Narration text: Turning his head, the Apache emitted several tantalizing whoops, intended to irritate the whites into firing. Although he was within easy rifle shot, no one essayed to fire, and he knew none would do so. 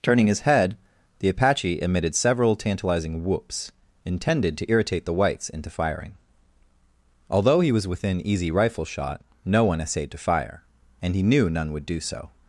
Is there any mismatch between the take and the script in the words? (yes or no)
no